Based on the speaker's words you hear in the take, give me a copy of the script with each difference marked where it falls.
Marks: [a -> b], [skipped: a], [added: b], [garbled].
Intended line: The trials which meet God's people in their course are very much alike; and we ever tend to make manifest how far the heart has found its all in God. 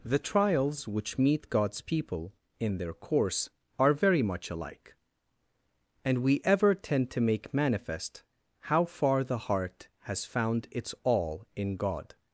The trials which meet God's people in their course are very much alike; and we ever tend to make manifest how far the heart has found its all in God.